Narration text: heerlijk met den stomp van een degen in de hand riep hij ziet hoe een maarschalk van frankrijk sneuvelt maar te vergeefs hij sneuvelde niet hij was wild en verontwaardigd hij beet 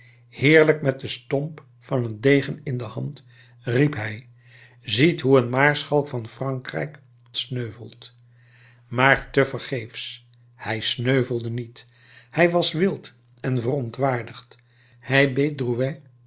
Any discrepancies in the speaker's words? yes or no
no